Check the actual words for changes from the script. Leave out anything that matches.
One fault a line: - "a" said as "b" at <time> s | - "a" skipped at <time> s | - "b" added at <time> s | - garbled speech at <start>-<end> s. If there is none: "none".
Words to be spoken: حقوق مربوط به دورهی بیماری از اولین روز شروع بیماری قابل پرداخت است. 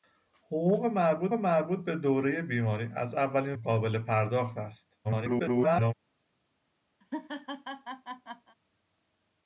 - "مربوط" added at 1.3 s
- "روز شروع بیماری" skipped at 3.6 s
- garbled speech at 5.0-5.9 s